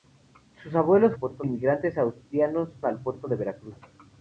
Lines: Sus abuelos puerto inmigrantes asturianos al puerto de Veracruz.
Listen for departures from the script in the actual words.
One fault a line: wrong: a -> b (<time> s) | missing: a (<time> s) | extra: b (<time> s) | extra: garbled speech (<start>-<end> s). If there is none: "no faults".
no faults